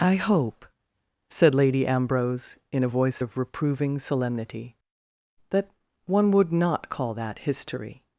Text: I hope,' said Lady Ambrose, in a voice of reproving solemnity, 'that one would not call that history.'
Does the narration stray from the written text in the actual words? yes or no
no